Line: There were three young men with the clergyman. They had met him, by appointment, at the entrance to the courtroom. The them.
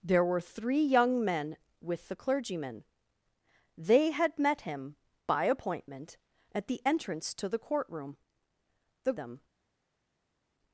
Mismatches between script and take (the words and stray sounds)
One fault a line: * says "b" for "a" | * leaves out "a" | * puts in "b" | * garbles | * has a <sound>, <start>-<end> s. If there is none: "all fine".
all fine